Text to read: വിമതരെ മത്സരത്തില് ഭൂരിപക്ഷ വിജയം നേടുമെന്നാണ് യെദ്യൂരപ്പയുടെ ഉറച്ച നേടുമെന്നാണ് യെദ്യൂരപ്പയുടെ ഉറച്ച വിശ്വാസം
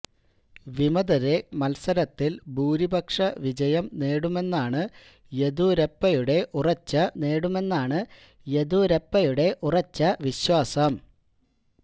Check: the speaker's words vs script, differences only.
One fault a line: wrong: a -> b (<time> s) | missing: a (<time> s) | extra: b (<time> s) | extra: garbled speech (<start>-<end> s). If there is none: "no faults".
no faults